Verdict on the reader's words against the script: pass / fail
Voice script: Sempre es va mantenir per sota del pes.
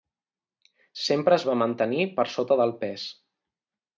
pass